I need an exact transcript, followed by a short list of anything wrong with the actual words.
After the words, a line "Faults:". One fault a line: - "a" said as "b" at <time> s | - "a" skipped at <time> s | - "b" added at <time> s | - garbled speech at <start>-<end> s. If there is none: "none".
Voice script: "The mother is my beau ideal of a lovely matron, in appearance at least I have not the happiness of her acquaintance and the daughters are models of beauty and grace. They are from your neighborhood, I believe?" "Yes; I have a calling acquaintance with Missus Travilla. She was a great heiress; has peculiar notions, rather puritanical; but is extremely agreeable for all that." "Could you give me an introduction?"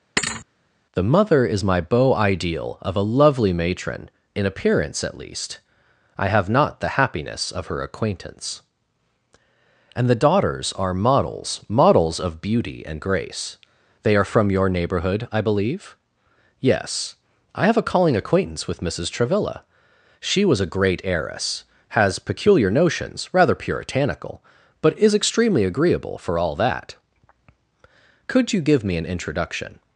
"The mother is my beau ideal of a lovely matron, in appearance at least I have not the happiness of her acquaintance and the daughters are models models of beauty and grace. They are from your neighborhood, I believe?" "Yes; I have a calling acquaintance with Missus Travilla. She was a great heiress; has peculiar notions, rather puritanical; but is extremely agreeable for all that." "Could you give me an introduction?"
Faults:
- "models" added at 11.7 s